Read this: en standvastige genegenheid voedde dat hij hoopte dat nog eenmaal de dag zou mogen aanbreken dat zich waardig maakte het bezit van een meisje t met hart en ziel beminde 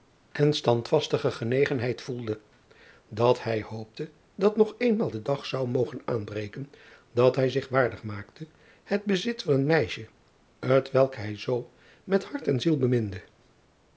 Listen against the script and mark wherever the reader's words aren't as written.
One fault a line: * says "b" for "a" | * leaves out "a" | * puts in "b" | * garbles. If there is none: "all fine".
* puts in "hij"
* puts in "welk hij zoo"